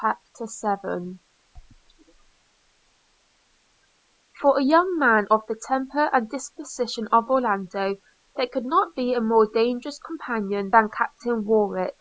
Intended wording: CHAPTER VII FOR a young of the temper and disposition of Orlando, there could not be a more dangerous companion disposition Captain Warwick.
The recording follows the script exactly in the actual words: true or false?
false